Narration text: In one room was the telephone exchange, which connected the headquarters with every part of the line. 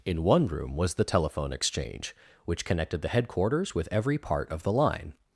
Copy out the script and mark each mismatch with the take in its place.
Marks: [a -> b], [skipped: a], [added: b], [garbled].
In one room was the telephone exchange, which connected the headquarters with every part of the line.